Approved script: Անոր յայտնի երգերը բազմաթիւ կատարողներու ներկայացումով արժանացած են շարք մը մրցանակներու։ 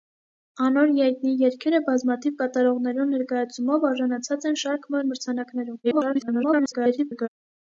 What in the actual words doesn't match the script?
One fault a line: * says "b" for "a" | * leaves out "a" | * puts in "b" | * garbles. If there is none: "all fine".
* garbles